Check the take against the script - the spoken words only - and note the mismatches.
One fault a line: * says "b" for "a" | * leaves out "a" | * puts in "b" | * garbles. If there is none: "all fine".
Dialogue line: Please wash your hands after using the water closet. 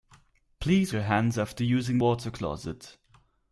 * leaves out "wash"
* leaves out "the"